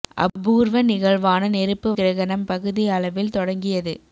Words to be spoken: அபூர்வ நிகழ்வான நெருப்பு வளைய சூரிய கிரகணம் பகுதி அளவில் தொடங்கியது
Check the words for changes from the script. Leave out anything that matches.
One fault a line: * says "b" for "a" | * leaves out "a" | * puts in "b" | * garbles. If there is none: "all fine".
* leaves out "வளைய சூரிய"